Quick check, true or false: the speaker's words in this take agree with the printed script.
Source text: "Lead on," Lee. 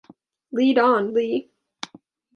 true